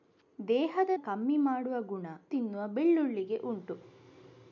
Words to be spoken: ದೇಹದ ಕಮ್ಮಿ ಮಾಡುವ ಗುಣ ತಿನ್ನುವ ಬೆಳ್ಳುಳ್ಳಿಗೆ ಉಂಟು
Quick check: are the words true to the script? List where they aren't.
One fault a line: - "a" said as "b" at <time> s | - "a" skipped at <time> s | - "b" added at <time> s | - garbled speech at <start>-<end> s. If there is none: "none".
none